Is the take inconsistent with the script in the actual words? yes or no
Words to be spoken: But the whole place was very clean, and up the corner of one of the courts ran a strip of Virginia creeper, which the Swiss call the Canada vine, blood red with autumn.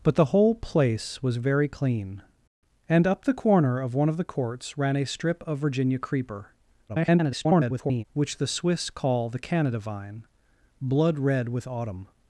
yes